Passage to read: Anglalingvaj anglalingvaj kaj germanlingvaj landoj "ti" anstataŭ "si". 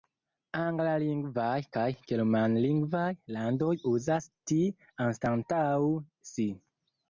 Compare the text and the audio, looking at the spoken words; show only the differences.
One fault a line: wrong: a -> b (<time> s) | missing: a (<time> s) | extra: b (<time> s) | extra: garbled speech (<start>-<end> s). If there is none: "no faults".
missing: anglalingvaj (1.6 s)
extra: uzas (3.9 s)